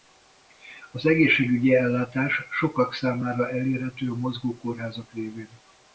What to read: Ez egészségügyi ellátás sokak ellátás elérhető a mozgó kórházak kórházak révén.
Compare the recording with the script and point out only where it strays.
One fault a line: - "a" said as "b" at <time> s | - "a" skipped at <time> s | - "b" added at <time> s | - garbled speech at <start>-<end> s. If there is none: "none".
- "Ez" said as "Az" at 0.9 s
- "ellátás" said as "számára" at 2.9 s
- "kórházak" skipped at 5.1 s